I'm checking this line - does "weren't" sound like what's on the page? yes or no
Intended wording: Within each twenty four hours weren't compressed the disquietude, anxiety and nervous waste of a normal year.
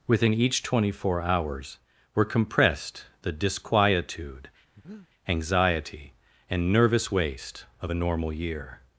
no